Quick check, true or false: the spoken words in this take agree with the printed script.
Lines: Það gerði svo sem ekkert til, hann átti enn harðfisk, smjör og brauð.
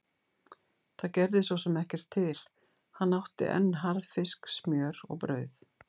true